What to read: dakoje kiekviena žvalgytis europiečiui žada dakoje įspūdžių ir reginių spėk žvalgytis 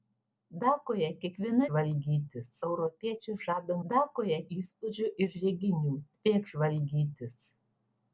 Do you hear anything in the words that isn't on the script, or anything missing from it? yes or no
no